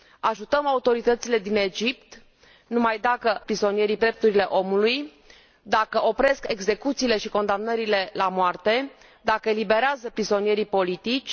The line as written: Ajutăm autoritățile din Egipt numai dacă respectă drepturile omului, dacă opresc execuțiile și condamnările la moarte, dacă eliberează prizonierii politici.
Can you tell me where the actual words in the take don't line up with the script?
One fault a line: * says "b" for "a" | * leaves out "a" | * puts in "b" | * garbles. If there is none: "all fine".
* says "prizonierii" for "respectă"